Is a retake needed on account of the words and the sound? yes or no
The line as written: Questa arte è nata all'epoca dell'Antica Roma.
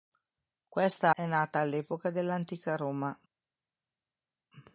yes